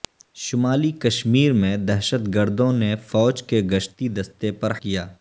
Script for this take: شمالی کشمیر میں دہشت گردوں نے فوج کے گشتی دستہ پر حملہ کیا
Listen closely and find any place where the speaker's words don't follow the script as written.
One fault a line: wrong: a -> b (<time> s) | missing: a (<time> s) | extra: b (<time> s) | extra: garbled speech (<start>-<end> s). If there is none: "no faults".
missing: حملہ (4.7 s)